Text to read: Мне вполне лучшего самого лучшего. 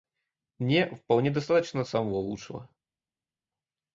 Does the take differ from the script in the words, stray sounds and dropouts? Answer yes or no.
yes